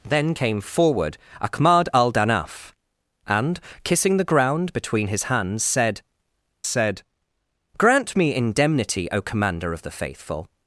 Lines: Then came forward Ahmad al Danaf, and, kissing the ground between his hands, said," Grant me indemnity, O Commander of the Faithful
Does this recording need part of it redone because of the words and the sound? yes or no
yes